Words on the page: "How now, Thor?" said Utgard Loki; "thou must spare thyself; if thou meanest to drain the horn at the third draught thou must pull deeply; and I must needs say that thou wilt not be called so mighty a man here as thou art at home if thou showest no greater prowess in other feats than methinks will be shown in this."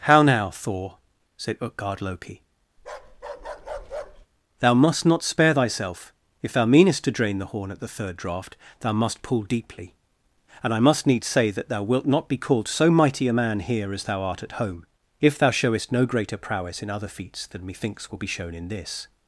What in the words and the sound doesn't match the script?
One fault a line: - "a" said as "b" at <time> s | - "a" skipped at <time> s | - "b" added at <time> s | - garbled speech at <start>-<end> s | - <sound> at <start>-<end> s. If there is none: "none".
- bark at 2.8-4.3 s
- "not" added at 5.0 s